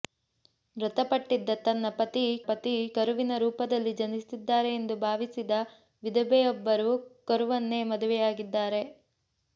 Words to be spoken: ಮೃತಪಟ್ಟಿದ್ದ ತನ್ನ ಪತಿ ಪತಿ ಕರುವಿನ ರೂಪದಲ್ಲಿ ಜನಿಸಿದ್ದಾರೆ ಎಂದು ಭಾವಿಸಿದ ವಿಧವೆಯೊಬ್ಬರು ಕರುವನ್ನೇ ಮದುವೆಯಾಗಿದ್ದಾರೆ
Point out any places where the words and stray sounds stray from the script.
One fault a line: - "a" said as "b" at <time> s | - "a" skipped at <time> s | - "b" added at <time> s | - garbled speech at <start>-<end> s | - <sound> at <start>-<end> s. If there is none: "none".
none